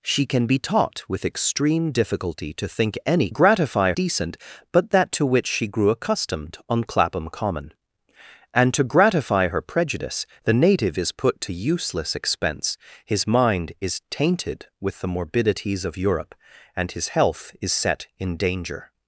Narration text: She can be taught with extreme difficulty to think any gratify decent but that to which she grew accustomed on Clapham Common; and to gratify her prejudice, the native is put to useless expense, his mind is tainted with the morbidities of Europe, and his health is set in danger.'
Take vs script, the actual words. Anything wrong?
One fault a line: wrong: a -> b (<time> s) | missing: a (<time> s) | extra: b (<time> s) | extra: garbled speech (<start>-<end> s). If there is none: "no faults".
no faults